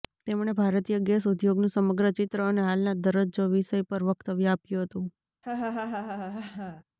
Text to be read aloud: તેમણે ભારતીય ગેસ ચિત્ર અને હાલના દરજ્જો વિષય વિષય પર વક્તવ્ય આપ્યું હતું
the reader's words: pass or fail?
fail